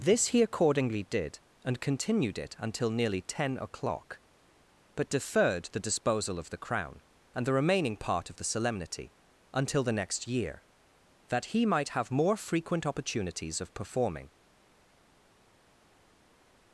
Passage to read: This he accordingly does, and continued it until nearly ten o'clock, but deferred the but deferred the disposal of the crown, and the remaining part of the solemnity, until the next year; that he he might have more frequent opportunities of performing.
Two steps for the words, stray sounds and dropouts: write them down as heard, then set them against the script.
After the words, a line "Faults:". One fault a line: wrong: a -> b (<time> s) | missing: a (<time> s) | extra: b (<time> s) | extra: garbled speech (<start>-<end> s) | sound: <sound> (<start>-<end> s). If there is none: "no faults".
This he accordingly did, and continued it until nearly ten o'clock, but deferred the disposal of the crown, and the remaining part of the solemnity, until the next year; that he might have more frequent opportunities of performing.
Faults:
wrong: does -> did (1.0 s)
missing: but deferred the (5.8 s)
missing: he (11.7 s)